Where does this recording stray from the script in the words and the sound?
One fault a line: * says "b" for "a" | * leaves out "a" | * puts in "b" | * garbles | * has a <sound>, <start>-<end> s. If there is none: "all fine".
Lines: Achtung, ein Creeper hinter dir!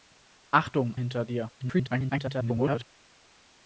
* leaves out "ein Creeper"
* garbles